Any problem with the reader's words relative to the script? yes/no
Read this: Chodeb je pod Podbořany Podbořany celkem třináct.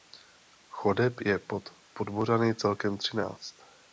yes